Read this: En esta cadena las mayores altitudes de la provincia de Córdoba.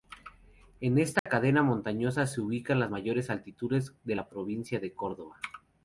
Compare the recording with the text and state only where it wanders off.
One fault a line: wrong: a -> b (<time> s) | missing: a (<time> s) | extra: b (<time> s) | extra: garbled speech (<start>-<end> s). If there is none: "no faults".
extra: montañosa se ubican (1.6 s)